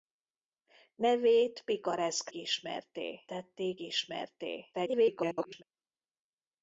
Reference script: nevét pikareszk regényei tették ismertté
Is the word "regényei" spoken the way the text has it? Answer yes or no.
no